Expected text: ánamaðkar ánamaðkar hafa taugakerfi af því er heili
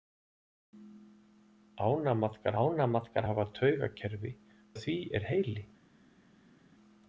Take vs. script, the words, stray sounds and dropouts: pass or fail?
pass